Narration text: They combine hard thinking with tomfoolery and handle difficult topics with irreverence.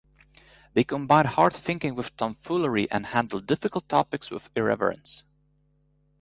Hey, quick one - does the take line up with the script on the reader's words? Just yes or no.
yes